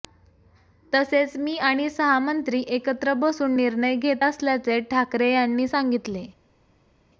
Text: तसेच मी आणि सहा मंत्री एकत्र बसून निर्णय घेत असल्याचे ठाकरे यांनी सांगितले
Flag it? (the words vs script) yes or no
no